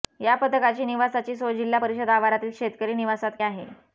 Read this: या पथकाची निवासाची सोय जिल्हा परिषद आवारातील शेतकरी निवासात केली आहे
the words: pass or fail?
fail